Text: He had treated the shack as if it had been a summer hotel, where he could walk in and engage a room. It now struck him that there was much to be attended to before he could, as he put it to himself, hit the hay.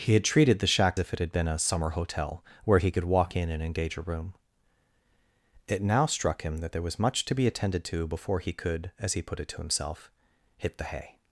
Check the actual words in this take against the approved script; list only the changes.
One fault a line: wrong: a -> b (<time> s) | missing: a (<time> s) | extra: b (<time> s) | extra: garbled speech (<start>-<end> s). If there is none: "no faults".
missing: as (1.0 s)